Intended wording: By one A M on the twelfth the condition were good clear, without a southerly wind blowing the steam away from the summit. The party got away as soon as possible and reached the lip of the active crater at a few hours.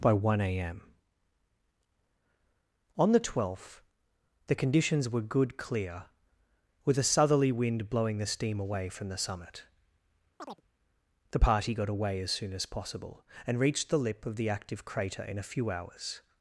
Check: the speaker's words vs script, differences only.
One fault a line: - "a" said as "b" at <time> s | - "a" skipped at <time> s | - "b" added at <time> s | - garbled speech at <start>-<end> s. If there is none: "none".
- "condition" said as "conditions" at 4.5 s
- "without" said as "with" at 6.8 s
- "at" said as "in" at 15.2 s